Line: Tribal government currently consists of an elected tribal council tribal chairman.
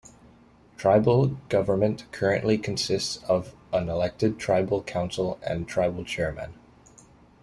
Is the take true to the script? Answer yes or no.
no